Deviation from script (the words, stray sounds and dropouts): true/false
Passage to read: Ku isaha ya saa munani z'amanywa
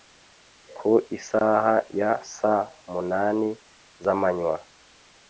false